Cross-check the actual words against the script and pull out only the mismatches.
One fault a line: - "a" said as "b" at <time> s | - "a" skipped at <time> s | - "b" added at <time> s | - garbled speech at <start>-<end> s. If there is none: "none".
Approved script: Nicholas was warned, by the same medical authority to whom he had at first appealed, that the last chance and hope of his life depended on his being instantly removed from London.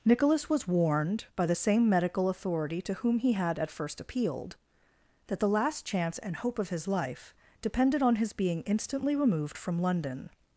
none